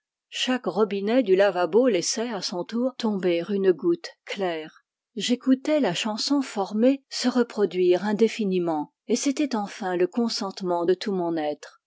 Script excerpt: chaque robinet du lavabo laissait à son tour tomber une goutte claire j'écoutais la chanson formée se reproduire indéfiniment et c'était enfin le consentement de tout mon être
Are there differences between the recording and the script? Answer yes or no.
no